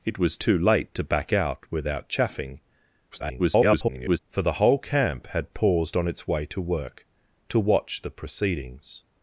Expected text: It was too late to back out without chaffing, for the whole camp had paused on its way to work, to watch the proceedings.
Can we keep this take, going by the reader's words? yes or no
no